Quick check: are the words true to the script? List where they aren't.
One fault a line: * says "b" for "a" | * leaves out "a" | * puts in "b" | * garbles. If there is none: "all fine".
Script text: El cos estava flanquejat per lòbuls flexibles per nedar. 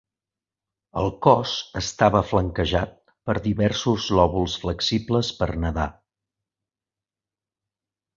* puts in "diversos"